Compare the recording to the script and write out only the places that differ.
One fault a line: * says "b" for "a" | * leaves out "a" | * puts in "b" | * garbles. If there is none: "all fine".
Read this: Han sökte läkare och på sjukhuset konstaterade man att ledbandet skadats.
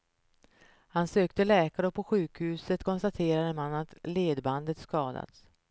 all fine